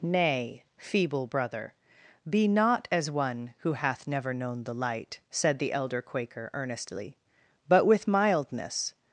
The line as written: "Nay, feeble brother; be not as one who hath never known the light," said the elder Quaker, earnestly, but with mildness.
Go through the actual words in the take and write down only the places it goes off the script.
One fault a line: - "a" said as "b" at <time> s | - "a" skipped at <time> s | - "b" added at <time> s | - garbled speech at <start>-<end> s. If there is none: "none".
none